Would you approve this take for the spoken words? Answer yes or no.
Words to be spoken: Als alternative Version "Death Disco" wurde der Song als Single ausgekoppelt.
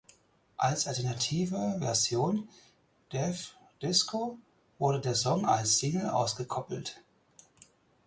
yes